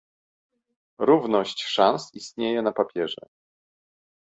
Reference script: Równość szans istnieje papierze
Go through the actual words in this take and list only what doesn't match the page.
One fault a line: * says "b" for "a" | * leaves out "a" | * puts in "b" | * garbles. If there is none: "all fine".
* puts in "na"